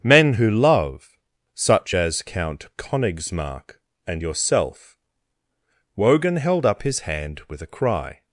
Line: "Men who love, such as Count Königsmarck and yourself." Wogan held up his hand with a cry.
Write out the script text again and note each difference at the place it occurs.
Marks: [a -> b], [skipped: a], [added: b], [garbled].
"Men who love, such as Count Königsmarck and yourself." Wogan held up his hand with a cry.